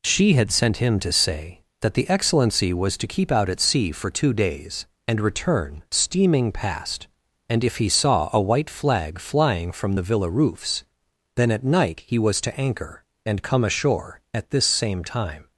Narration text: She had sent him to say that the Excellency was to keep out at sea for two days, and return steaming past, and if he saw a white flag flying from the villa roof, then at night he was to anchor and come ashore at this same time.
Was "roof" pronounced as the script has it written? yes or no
no